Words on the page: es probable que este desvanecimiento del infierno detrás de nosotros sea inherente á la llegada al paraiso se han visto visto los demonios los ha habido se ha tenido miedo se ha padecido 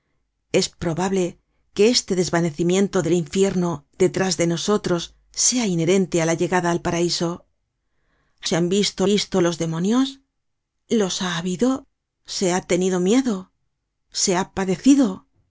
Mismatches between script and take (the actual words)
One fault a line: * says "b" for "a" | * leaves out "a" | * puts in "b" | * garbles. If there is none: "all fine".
all fine